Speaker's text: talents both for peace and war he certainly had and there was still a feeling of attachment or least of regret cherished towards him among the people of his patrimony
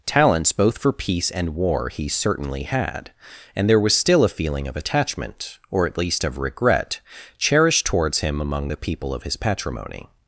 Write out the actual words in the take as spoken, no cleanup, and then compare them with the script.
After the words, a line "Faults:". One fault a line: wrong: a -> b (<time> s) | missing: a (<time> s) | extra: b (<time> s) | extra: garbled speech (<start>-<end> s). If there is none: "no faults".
talents both for peace and war he certainly had and there was still a feeling of attachment or at least of regret cherished towards him among the people of his patrimony
Faults:
extra: at (5.8 s)